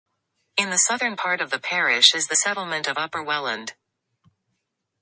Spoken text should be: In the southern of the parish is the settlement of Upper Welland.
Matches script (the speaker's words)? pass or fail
fail